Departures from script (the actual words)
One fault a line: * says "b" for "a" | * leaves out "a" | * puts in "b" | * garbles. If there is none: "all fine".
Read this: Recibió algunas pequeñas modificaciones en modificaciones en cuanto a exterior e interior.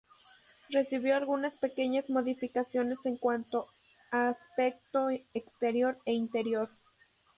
* leaves out "modificaciones en"
* puts in "aspecto"